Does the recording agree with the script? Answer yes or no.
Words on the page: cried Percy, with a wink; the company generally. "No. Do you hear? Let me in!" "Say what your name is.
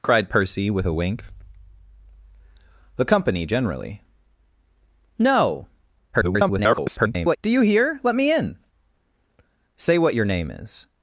no